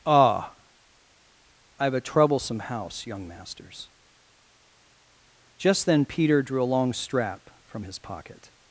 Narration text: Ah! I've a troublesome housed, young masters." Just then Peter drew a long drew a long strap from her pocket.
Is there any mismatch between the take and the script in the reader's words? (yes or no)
yes